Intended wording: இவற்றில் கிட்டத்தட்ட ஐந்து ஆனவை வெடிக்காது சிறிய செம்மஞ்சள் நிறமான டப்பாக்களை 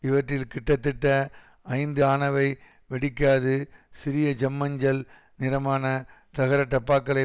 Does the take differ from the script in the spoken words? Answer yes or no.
yes